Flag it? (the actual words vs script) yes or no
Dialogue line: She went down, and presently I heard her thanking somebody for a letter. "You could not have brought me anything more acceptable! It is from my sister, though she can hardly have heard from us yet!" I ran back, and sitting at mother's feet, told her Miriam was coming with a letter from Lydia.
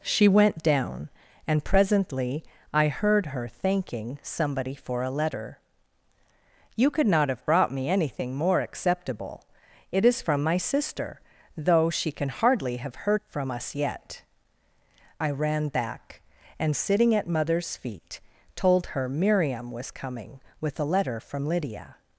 no